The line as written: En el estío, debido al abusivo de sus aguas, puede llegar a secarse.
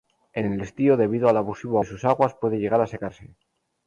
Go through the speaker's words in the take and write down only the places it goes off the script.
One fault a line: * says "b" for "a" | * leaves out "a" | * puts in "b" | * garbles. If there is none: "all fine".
all fine